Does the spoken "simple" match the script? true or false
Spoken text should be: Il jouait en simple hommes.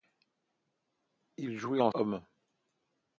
false